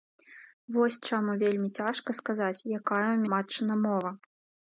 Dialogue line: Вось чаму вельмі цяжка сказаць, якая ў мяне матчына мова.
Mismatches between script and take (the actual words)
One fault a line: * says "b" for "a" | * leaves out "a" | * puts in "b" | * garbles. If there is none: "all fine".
* leaves out "мяне"